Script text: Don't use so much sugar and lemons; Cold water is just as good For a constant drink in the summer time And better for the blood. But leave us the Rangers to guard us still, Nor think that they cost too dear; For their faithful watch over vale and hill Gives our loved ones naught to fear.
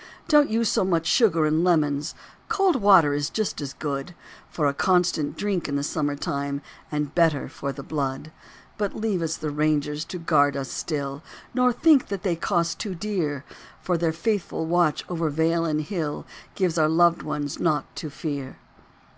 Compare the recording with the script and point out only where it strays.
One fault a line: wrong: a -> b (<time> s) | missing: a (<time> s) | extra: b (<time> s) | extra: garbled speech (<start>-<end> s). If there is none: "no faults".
no faults